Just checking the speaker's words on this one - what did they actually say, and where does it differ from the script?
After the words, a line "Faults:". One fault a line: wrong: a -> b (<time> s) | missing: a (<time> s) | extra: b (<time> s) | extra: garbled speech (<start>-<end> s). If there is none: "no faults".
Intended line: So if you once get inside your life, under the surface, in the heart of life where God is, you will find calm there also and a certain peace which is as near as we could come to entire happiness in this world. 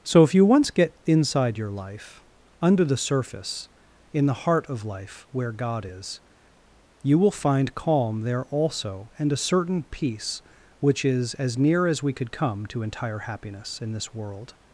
So if you once get inside your life, under the surface, in the heart of life where God is, you will find calm there also and a certain peace which is as near as we could come to entire happiness in this world.
Faults:
no faults